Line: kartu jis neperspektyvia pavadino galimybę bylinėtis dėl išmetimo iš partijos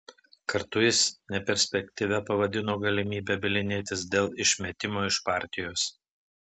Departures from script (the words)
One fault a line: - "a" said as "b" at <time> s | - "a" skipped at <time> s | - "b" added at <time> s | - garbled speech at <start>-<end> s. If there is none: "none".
none